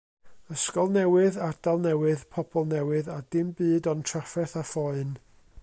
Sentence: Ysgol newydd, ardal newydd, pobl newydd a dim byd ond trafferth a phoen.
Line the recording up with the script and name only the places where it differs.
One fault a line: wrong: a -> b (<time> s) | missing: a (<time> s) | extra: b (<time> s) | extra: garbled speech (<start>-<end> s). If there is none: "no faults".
no faults